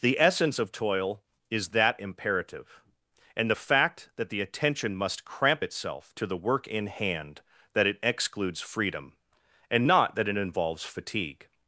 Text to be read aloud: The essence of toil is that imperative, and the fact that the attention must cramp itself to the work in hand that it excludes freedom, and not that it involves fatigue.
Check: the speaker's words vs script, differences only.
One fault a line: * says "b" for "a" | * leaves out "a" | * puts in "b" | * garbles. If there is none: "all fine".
all fine